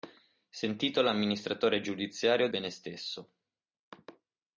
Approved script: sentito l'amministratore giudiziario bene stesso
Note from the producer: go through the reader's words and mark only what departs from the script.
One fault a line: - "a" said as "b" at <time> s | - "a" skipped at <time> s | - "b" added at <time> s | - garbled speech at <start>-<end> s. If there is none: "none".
none